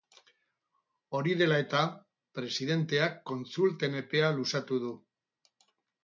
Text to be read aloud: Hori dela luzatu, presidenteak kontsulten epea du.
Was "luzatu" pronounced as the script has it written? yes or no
no